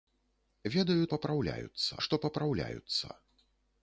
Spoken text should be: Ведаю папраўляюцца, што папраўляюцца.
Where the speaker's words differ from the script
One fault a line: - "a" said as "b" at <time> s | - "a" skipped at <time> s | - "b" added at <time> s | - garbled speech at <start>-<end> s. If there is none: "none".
none